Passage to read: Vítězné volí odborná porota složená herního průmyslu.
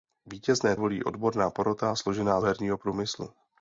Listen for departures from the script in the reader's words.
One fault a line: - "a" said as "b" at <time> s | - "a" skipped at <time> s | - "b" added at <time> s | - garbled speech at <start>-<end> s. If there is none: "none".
none